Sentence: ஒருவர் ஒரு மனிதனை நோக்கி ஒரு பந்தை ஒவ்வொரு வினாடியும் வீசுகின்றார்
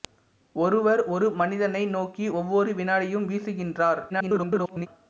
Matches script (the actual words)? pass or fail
fail